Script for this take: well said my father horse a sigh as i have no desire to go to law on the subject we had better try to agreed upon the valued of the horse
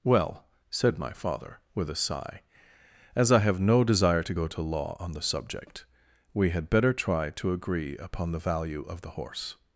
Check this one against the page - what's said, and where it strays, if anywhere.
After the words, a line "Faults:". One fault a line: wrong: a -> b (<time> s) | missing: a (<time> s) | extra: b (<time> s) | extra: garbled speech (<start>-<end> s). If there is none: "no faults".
well said my father with a sigh as i have no desire to go to law on the subject we had better try to agree upon the value of the horse
Faults:
wrong: horse -> with (1.8 s)
wrong: agreed -> agree (7.5 s)
wrong: valued -> value (8.4 s)